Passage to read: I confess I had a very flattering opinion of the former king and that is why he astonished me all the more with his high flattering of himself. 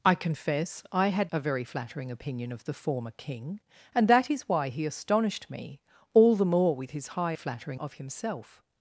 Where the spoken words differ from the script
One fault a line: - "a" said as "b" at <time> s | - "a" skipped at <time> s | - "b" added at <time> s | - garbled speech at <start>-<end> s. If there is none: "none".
none